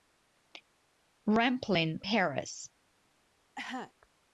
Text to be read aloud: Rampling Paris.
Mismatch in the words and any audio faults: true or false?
true